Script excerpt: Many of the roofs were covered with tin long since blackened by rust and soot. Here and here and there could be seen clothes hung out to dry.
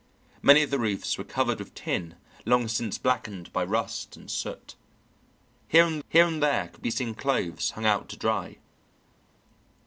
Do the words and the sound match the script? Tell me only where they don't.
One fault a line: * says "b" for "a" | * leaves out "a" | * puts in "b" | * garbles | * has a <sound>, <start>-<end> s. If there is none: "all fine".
all fine